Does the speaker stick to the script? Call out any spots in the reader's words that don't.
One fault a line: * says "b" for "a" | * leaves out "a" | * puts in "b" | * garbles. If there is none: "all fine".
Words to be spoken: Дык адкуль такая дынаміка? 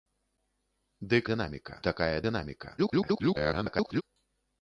* says "дынаміка" for "адкуль"
* garbles